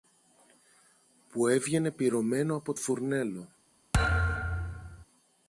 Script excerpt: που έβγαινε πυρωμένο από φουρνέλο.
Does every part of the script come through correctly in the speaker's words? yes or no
yes